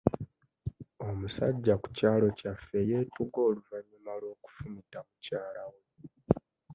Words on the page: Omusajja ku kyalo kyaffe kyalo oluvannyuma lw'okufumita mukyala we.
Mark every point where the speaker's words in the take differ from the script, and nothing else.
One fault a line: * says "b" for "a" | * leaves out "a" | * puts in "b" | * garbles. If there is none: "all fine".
* says "yeetuga" for "kyalo"